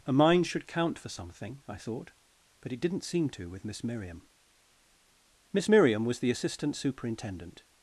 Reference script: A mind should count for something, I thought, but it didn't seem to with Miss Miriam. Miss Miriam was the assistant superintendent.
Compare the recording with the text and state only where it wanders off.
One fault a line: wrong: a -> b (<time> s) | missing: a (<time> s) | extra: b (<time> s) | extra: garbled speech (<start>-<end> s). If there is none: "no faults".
no faults